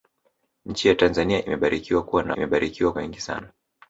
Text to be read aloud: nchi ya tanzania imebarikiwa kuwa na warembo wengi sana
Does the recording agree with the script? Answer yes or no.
no